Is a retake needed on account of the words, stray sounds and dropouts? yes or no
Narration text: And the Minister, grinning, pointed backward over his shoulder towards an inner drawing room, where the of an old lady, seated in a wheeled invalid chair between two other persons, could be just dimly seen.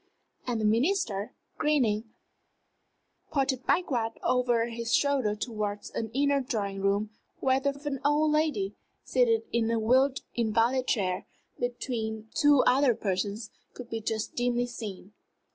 no